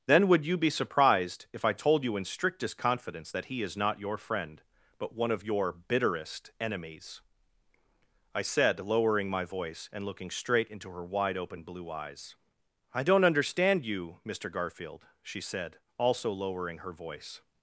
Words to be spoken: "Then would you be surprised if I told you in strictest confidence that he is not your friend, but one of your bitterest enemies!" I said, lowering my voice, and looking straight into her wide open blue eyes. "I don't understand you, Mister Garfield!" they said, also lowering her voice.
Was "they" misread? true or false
true